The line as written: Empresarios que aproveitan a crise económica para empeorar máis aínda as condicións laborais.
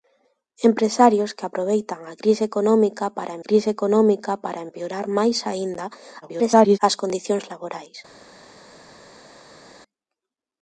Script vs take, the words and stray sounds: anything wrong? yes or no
yes